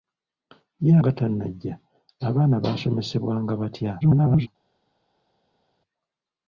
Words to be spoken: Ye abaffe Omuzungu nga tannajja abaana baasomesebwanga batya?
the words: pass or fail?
fail